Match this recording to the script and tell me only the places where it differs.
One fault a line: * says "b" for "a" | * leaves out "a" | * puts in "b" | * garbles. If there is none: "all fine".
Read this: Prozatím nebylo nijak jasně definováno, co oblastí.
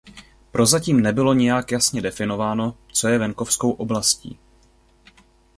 * puts in "je venkovskou"